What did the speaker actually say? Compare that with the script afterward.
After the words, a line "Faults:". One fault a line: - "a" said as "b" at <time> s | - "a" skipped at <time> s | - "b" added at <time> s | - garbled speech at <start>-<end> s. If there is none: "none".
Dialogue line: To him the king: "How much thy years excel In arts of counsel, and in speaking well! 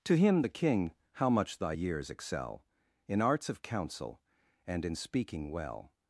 To him the king: "How much thy years excel In arts of counsel, and in speaking well!
Faults:
none